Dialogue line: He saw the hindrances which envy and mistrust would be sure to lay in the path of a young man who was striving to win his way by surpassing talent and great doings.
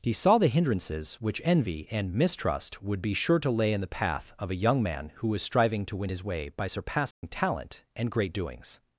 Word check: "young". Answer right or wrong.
right